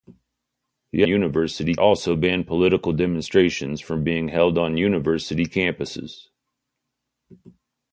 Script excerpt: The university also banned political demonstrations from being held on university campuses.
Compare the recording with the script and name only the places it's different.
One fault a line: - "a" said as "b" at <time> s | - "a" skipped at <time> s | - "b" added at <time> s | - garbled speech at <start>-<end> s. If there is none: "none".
none